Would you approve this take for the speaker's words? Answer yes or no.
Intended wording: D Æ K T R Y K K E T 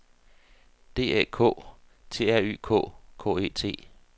yes